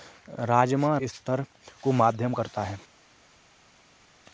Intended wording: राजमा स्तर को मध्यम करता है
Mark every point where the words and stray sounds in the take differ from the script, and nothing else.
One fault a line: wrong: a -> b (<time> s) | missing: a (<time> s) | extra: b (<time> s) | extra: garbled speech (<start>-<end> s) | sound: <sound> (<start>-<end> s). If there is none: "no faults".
no faults